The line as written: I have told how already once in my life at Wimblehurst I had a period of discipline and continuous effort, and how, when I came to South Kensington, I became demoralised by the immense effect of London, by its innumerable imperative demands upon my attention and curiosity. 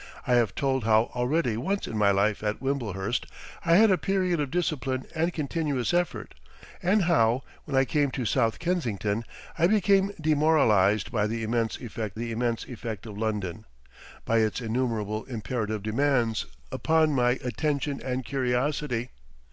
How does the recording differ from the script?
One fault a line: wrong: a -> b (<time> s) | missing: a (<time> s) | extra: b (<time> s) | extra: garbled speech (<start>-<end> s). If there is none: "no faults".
extra: the immense effect (12.2 s)